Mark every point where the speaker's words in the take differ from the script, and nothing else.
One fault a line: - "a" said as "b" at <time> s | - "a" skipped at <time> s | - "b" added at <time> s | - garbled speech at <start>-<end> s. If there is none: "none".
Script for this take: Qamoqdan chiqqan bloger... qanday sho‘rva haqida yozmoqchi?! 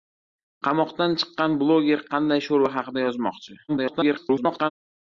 - garbled speech at 3.7-4.7 s